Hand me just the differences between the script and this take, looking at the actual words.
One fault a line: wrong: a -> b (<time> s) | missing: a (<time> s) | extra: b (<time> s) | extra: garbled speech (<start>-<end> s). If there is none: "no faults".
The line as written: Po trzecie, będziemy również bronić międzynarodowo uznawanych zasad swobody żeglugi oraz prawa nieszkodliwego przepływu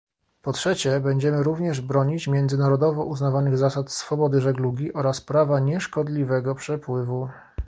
no faults